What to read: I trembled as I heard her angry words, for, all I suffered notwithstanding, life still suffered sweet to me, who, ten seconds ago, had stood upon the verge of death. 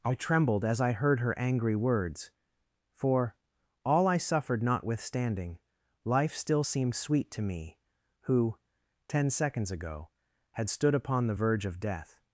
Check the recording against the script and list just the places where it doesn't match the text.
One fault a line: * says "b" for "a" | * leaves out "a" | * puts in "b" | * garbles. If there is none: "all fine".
* says "seemed" for "suffered"